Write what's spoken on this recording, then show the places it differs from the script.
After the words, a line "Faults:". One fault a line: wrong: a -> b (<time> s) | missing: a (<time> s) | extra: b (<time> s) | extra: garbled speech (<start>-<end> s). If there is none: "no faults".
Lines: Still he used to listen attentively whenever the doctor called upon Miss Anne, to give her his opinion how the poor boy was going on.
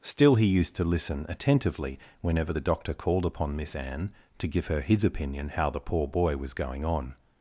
Still he used to listen attentively whenever the doctor called upon Miss Anne, to give her his opinion how the poor boy was going on.
Faults:
no faults